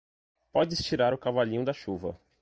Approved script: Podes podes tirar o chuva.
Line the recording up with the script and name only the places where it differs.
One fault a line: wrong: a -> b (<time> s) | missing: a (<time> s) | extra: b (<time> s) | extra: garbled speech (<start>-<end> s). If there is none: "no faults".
missing: podes (0.8 s)
extra: cavalinho da (1.2 s)